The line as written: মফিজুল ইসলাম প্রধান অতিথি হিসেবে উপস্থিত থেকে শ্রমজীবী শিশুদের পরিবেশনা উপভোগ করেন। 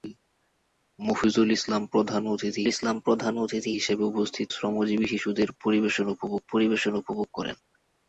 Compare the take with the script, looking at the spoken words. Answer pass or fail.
fail